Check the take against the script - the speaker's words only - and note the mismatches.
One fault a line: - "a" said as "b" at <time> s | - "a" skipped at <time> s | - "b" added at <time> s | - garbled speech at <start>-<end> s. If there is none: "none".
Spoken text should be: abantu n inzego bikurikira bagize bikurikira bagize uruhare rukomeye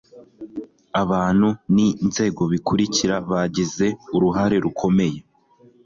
- "bikurikira bagize" skipped at 3.9 s